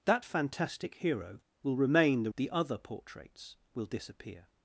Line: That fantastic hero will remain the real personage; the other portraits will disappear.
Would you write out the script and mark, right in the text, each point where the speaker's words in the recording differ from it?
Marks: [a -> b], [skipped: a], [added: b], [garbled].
That fantastic hero will remain the [skipped: real personage;] the other portraits will disappear.